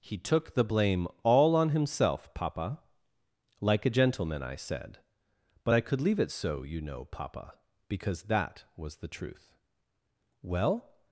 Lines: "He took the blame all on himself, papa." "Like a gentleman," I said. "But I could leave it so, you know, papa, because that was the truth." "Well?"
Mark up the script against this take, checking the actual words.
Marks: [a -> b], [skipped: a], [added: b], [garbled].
"He took the blame all on himself, papa." "Like a gentleman," I said. "But I could leave it so, you know, papa, because that was the truth." "Well?"